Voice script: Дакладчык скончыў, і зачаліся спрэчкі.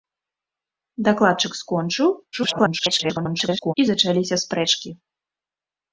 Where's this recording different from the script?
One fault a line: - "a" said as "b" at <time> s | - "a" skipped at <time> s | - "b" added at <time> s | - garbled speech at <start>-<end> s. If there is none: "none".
- garbled speech at 2.3-3.7 s